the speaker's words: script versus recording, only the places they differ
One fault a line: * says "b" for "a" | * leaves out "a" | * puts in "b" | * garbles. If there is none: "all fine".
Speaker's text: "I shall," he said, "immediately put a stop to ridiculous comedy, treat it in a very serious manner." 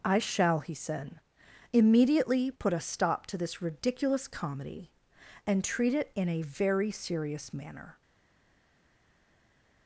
* puts in "this"
* puts in "and"